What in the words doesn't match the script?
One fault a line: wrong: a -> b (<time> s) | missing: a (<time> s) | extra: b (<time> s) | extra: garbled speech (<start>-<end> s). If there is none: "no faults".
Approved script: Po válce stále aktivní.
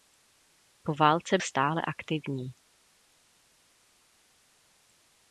no faults